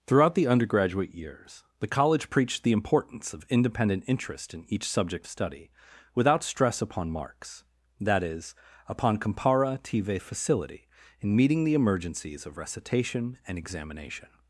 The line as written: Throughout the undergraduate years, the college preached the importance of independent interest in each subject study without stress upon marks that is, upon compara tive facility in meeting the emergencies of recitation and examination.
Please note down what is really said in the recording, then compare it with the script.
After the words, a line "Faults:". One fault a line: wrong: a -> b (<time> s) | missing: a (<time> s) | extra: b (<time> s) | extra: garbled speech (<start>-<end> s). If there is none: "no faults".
Throughout the undergraduate years, the college preached the importance of independent interest in each subject study without stress upon marks that is, upon compara tive facility in meeting the emergencies of recitation and examination.
Faults:
no faults